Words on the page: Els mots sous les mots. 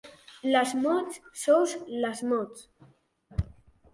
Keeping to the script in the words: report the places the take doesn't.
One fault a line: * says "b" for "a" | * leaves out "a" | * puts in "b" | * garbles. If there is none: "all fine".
* says "Les" for "Els"